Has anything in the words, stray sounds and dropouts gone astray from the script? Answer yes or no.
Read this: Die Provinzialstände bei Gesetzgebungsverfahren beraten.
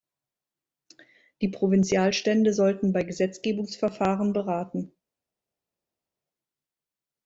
yes